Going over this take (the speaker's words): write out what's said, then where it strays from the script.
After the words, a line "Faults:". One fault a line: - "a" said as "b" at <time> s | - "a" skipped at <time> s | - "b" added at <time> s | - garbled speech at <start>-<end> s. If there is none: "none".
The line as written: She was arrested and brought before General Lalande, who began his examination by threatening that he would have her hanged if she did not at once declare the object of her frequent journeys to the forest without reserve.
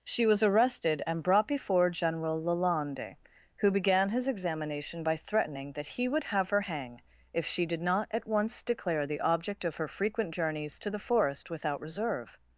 She was arrested and brought before General Lalande, who began his examination by threatening that he would have her hang if she did not at once declare the object of her frequent journeys to the forest without reserve.
Faults:
- "hanged" said as "hang" at 6.6 s